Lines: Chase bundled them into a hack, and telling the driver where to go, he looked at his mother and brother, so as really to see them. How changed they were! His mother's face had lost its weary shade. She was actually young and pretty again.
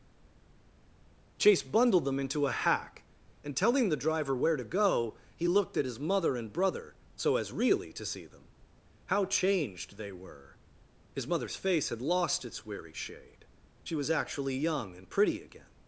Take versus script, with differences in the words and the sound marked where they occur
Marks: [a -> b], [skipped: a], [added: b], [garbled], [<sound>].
Chase bundled them into a hack, and telling the driver where to go, he looked at his mother and brother, so as really to see them. How changed they were! His mother's face had lost its weary shade. She was actually young and pretty again.